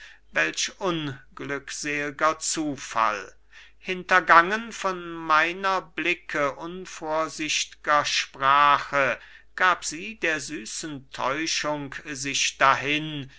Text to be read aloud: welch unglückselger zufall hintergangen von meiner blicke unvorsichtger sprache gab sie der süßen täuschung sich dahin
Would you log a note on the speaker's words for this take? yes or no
no